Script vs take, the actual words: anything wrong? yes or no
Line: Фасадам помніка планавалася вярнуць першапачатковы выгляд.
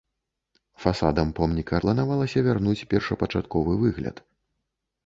no